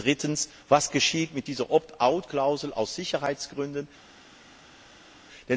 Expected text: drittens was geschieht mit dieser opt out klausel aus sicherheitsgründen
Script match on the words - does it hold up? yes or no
yes